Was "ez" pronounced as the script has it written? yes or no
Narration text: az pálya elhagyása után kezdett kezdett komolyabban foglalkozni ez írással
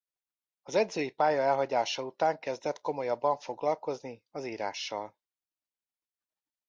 no